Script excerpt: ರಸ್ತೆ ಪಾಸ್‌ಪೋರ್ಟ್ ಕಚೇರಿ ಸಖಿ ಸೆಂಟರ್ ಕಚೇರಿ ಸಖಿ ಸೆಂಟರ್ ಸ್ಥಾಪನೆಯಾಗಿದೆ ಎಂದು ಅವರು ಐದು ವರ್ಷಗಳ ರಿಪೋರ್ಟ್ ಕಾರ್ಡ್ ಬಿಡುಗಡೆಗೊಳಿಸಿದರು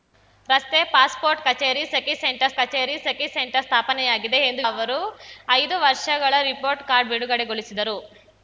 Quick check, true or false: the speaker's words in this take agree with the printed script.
true